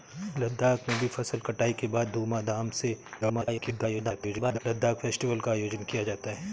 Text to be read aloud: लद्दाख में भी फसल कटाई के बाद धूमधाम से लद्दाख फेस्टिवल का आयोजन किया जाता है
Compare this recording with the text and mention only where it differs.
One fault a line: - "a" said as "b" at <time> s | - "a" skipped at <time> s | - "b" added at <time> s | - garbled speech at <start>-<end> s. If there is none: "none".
- garbled speech at 3.2-4.6 s